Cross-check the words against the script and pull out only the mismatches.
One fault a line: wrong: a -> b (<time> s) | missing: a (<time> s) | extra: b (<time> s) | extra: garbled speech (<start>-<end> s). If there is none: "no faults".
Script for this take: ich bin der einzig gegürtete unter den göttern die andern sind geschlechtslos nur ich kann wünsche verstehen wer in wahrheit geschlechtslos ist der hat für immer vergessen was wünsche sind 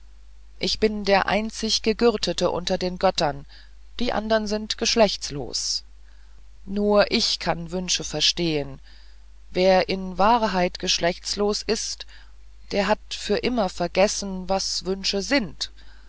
no faults